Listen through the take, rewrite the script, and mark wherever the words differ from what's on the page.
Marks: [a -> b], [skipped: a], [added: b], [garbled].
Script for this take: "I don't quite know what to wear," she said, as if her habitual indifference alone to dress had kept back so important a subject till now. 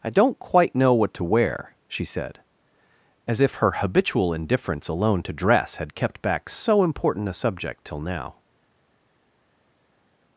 "I don't quite know what to wear," she said, as if her habitual indifference alone to dress had kept back so important a subject till now.